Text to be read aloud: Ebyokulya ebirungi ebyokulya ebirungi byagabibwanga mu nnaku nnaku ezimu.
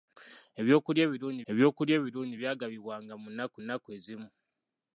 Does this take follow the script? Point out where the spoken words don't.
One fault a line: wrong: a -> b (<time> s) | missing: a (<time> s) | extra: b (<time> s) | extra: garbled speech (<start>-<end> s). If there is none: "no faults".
no faults